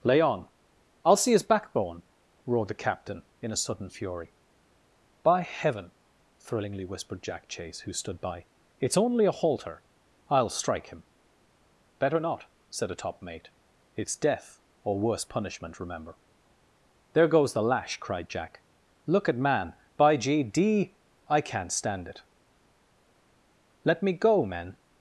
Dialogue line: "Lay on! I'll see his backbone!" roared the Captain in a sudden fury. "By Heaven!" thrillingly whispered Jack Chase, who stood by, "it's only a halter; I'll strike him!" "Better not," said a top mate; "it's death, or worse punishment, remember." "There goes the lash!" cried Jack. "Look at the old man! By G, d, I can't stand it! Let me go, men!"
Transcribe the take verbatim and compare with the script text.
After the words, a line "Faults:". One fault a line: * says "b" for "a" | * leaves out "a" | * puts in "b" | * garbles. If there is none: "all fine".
"Lay on! I'll see his backbone!" roared the Captain in a sudden fury. "By Heaven!" thrillingly whispered Jack Chase, who stood by, "it's only a halter; I'll strike him!" "Better not," said a top mate; "it's death, or worse punishment, remember." "There goes the lash!" cried Jack. "Look at man! By G, d, I can't stand it! Let me go, men!"
Faults:
* leaves out "the old"